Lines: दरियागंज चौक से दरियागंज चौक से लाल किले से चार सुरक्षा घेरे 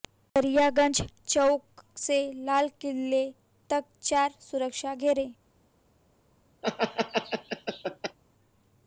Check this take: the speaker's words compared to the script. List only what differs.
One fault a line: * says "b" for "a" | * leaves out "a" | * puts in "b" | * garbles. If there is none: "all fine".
* leaves out "दरियागंज चौक से"
* says "तक" for "से"